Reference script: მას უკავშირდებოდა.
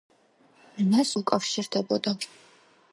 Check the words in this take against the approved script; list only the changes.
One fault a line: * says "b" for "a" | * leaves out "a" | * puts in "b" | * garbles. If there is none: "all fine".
all fine